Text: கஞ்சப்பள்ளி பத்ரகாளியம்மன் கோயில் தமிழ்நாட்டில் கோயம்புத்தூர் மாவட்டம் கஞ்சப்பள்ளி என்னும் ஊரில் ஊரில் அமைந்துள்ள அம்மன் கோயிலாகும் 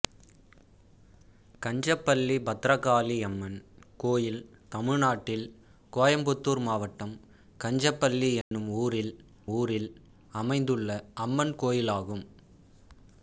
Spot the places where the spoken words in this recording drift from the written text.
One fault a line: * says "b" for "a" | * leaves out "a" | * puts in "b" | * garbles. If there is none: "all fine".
all fine